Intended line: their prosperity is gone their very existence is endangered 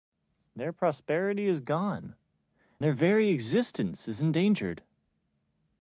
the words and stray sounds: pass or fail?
pass